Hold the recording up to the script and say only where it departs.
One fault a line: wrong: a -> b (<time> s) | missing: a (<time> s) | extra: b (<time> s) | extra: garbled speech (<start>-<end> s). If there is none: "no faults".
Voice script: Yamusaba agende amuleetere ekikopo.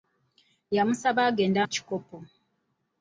missing: amuleetere (1.6 s)